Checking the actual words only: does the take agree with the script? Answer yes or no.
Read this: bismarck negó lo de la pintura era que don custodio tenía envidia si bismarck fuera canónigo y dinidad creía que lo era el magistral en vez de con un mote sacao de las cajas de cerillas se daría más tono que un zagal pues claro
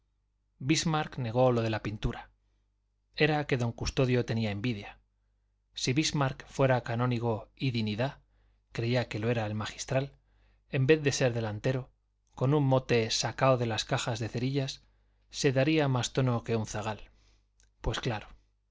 no